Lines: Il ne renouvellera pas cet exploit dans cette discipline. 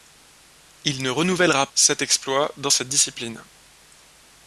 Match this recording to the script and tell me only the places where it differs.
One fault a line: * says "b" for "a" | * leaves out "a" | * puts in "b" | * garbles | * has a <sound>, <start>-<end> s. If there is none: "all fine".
* leaves out "pas"